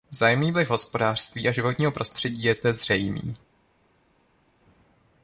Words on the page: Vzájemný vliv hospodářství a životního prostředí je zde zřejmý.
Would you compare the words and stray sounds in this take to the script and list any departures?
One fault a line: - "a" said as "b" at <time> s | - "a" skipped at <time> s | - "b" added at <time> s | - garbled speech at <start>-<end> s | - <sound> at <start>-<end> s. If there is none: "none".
none